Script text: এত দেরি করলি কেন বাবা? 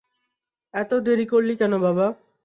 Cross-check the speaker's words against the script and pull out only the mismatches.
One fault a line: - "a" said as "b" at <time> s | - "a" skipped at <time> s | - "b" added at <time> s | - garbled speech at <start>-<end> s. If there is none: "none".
none